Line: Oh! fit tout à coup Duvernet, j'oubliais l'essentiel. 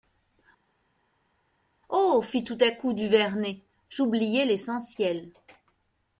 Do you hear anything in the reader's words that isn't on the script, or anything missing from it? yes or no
no